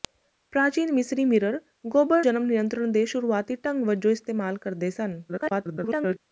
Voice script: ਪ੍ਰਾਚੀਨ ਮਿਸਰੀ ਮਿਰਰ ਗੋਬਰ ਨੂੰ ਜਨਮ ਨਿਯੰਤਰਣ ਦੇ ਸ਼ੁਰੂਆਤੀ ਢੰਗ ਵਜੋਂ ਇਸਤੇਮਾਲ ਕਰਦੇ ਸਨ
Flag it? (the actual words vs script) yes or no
yes